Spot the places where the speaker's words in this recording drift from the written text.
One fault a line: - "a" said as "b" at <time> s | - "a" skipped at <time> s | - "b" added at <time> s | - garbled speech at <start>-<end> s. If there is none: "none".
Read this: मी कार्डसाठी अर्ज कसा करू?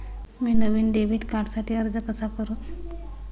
- "नवीन डेबिट" added at 0.5 s